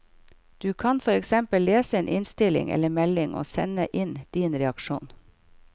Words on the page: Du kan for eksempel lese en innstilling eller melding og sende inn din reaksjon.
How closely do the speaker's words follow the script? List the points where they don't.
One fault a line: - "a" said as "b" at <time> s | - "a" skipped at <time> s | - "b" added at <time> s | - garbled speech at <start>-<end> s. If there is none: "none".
none